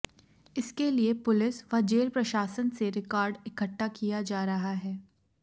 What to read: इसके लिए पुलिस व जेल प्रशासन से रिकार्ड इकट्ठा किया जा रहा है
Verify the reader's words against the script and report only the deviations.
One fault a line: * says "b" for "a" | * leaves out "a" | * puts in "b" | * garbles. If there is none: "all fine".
all fine